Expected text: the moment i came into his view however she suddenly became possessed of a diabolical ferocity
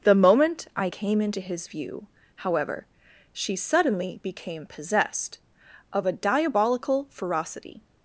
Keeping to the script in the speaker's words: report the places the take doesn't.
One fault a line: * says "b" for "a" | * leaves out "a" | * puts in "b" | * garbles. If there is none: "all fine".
all fine